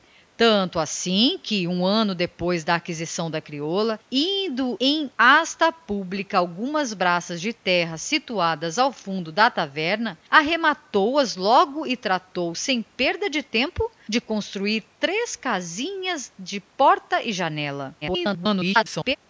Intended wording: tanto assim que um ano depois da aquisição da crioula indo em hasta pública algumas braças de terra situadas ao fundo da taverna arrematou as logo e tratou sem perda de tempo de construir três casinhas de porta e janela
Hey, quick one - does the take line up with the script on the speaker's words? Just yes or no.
no